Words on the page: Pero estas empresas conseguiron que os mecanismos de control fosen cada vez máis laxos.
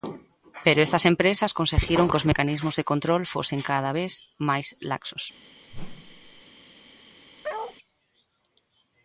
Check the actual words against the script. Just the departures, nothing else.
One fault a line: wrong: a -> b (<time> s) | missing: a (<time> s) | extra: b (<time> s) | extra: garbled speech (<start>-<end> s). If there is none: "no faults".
no faults